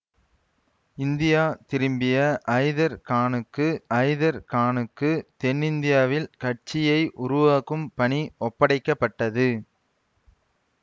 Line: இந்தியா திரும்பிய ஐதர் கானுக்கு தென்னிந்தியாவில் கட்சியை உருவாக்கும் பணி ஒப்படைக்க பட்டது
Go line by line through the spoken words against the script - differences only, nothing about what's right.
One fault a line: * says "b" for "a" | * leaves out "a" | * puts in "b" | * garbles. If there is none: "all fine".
* puts in "ஐதர் கானுக்கு"